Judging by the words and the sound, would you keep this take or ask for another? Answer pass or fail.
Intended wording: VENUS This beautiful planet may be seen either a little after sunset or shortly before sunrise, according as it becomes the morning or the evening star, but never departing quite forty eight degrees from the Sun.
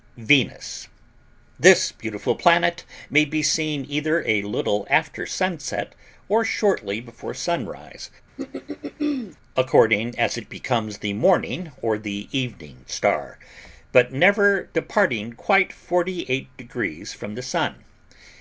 fail